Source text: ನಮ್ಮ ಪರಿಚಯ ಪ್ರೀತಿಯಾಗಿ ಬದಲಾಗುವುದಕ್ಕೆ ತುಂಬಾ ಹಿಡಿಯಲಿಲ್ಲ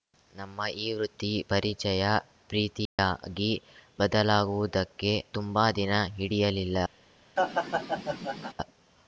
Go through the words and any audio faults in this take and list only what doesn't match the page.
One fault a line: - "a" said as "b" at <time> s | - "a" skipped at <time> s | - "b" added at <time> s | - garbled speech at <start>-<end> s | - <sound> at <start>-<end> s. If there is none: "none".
- "ಈ ವೃತ್ತಿ" added at 0.8 s
- dropout at 2.9-3.0 s
- "ದಿನ" added at 5.7 s
- laugh at 7.4-8.5 s